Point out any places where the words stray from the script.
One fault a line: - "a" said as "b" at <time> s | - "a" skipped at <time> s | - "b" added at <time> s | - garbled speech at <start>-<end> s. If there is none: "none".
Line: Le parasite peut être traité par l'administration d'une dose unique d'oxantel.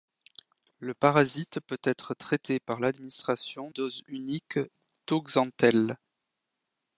- "d'une" skipped at 3.7 s